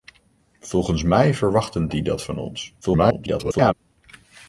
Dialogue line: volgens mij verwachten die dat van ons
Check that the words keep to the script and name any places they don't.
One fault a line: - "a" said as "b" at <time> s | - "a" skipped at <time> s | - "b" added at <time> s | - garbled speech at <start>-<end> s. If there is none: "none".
- garbled speech at 2.8-3.7 s